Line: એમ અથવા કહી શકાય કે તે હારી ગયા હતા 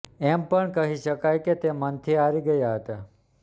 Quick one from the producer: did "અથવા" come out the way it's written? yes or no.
no